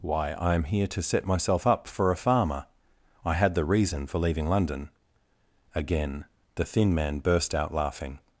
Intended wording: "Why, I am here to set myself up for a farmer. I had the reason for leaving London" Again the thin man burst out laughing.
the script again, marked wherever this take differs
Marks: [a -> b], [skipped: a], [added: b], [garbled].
"Why, I am here to set myself up for a farmer. I had the reason for leaving London" Again the thin man burst out laughing.